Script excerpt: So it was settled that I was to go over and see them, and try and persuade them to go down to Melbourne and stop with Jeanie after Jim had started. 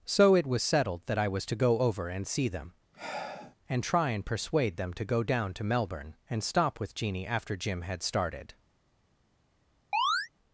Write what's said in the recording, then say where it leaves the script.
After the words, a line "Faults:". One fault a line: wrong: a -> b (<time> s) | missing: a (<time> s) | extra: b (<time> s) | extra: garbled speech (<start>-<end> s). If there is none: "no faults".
So it was settled that I was to go over and see them, and try and persuade them to go down to Melbourne and stop with Jeanie after Jim had started.
Faults:
no faults